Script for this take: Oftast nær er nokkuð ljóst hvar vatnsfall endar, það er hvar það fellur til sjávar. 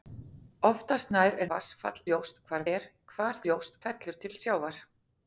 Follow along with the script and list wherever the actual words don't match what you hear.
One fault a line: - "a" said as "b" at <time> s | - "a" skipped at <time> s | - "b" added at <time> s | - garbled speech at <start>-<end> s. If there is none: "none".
- "nokkuð" said as "vatnsfall" at 1.5 s
- "vatnsfall endar það" skipped at 2.6 s
- "það" said as "ljóst" at 3.4 s